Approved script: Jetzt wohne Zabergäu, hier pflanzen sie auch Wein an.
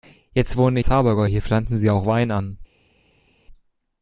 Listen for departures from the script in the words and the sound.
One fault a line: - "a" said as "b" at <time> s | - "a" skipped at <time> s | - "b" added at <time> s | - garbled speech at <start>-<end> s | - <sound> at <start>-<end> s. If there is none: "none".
none